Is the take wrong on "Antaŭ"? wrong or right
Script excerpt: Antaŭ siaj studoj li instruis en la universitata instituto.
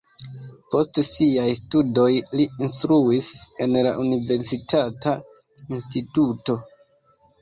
wrong